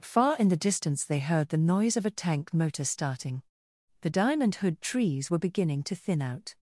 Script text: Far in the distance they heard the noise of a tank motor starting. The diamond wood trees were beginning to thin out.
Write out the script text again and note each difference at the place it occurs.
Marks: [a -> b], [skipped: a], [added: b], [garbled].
Far in the distance they heard the noise of a tank motor starting. The diamond [wood -> hood] trees were beginning to thin out.